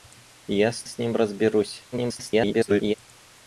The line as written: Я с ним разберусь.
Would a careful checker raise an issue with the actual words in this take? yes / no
yes